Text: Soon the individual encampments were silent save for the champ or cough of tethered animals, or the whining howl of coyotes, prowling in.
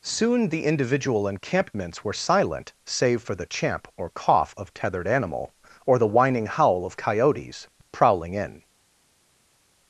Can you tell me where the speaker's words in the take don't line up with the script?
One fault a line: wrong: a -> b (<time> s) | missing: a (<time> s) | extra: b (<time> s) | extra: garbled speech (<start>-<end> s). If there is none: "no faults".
wrong: animals -> animal (5.1 s)